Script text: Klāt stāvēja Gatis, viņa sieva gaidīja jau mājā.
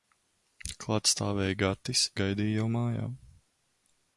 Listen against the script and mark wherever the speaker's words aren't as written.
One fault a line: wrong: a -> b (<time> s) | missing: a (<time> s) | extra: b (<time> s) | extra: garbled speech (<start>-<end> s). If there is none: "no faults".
missing: viņa sieva (2.1 s)